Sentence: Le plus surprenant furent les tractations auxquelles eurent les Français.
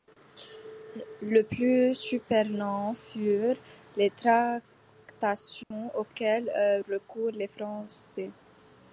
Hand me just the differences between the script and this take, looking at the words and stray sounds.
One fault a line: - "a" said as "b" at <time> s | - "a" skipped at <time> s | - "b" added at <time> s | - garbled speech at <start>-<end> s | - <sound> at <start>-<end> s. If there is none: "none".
- dropout at 5.6-5.7 s
- "recours" added at 6.9 s